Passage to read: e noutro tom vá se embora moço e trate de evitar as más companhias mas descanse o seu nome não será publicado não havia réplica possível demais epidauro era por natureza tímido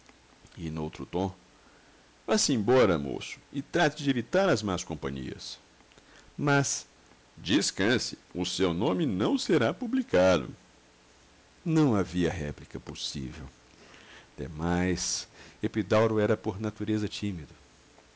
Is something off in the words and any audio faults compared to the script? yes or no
no